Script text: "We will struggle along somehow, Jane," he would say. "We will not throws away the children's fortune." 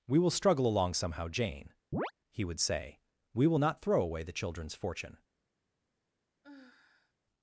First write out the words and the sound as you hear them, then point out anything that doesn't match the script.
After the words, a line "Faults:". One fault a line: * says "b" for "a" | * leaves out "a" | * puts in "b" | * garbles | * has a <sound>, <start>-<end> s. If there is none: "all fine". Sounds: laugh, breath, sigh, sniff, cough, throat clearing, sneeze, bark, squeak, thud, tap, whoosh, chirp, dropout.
"We will struggle along somehow, Jane," he would say. "We will not throw away the children's fortune."
Faults:
* has a chirp, 1.9-2.1 s
* says "throw" for "throws"
* has a sigh, 6.4-7.1 s